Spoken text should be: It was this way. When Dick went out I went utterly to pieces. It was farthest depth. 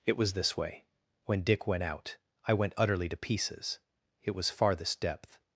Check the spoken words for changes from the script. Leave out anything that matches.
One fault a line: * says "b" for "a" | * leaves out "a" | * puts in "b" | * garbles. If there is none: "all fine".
all fine